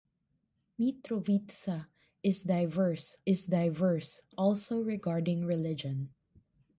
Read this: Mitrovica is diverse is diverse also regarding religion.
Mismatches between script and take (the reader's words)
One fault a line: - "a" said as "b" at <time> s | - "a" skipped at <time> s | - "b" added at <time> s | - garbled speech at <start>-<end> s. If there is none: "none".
none